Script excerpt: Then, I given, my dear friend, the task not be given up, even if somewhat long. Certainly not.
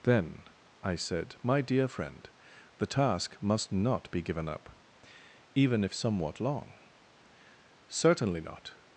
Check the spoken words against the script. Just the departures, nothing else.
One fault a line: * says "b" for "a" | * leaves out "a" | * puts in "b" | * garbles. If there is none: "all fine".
* says "said" for "given"
* puts in "must"